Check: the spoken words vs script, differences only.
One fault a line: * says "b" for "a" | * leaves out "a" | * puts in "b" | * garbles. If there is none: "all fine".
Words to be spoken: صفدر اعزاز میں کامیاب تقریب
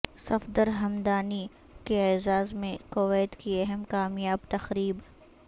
* puts in "ھمدانی کے"
* puts in "کویت کی اہم"